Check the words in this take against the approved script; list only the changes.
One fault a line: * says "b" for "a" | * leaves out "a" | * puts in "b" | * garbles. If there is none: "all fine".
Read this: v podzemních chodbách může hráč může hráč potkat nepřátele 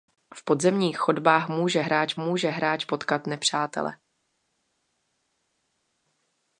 all fine